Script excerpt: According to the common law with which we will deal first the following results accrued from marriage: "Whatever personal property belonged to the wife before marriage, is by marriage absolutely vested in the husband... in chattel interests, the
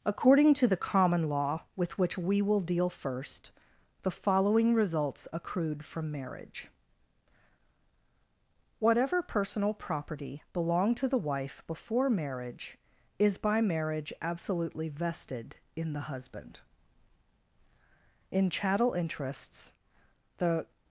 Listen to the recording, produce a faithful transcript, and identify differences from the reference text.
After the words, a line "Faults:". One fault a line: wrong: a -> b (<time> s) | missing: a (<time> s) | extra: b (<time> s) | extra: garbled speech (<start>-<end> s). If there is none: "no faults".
According to the common law with which we will deal first the following results accrued from marriage: "Whatever personal property belonged to the wife before marriage, is by marriage absolutely vested in the husband... in chattel interests, the
Faults:
no faults